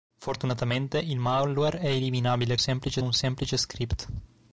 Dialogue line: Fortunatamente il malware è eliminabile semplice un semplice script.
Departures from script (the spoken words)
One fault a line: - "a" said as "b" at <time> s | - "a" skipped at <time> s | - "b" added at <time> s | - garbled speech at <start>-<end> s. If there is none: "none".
none